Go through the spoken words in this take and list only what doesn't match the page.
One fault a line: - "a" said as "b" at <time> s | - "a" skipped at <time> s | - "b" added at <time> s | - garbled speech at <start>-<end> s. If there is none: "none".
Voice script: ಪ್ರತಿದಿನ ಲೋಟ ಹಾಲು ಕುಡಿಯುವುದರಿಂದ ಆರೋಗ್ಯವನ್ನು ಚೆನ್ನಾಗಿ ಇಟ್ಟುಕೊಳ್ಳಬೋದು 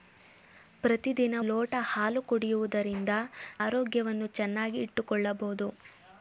none